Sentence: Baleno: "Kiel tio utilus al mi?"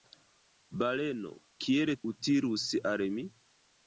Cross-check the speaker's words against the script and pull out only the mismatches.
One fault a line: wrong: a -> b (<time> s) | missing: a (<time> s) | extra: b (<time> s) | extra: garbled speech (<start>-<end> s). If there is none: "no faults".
missing: tio (1.9 s)